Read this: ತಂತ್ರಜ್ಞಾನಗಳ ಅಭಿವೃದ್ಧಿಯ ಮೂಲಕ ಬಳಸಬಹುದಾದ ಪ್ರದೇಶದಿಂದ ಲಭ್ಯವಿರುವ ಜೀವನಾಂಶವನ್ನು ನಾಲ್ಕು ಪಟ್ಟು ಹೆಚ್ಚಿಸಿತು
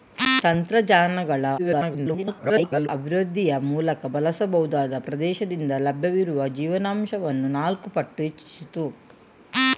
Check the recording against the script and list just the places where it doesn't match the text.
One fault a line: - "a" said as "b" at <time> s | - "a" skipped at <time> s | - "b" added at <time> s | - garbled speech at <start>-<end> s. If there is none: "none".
- garbled speech at 1.6-2.9 s